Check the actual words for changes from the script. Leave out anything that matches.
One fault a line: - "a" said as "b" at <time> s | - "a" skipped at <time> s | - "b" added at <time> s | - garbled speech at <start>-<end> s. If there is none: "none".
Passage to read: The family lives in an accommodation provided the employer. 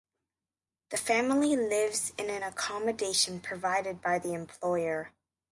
- "by" added at 4.0 s